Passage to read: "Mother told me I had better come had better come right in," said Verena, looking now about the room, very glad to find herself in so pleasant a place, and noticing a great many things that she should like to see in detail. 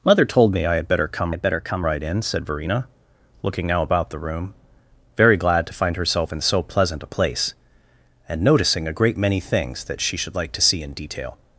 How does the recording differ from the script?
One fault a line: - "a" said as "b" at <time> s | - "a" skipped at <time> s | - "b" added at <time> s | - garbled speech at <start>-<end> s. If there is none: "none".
none